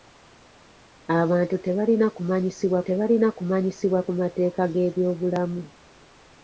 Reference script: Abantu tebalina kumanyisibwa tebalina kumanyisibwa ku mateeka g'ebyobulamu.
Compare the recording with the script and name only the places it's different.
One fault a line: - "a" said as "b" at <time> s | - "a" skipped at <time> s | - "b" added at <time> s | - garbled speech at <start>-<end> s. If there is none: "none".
none